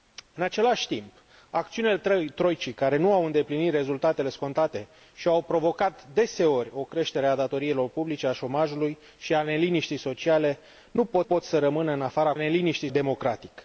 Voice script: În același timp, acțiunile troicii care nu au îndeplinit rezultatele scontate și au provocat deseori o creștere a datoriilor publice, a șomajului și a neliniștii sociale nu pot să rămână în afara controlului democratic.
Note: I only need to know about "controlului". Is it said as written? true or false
false